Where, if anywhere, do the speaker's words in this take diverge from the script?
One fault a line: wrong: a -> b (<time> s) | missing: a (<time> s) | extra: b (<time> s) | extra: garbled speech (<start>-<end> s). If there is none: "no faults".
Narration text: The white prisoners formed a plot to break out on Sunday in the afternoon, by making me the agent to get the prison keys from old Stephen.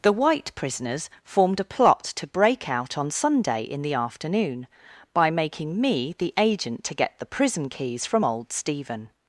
no faults